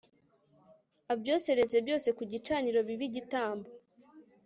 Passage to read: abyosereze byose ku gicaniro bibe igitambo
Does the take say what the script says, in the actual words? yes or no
yes